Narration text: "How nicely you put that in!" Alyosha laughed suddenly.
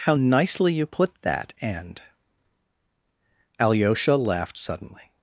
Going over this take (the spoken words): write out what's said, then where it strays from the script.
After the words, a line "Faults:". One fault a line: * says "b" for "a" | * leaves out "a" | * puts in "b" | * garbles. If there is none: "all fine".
"How nicely you put that and!" Alyosha laughed suddenly.
Faults:
* says "and" for "in"